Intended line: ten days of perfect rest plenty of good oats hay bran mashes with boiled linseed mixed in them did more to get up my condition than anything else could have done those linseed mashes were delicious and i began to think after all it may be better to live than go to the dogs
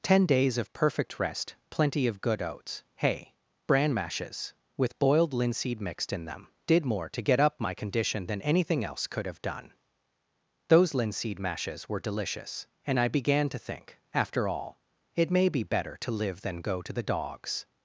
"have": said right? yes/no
yes